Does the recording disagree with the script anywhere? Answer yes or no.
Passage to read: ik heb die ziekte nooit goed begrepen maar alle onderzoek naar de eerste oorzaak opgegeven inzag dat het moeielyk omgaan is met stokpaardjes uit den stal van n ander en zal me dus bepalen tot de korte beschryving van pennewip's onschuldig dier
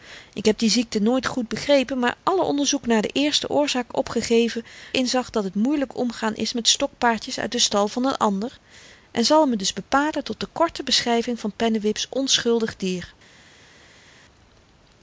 no